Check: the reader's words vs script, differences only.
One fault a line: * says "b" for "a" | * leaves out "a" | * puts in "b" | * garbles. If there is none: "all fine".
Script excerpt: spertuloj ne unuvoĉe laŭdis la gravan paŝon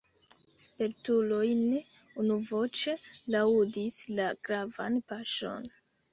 all fine